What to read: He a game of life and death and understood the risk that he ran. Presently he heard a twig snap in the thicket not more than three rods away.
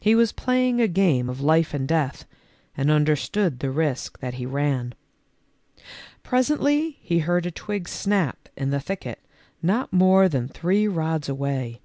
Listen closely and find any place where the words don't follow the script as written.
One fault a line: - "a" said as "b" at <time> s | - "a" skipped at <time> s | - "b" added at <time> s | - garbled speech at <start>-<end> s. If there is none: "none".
- "was playing" added at 0.1 s